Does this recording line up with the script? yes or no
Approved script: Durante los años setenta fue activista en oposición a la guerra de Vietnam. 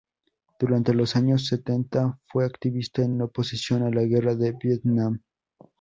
no